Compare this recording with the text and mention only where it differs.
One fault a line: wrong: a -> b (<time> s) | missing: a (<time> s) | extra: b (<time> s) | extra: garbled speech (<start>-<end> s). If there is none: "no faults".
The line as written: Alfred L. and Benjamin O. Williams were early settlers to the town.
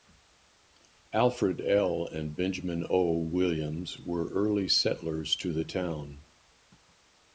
no faults